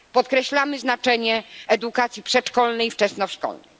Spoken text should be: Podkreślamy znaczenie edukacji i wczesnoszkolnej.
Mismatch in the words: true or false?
true